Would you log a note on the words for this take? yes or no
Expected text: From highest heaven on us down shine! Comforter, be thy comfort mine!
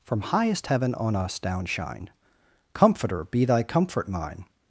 no